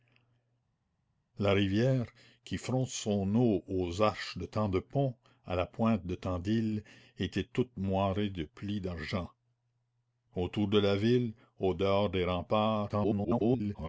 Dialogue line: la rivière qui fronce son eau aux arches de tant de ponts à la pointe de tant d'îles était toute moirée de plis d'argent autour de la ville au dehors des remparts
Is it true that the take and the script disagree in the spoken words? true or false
true